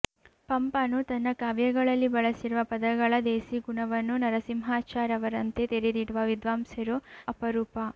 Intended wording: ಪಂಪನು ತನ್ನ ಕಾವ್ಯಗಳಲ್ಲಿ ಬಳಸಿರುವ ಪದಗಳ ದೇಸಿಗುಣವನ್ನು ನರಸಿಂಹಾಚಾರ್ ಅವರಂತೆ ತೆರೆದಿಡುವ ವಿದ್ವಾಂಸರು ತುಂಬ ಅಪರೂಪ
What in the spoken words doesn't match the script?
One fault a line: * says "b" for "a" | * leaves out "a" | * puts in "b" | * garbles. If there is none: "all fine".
* leaves out "ತುಂಬ"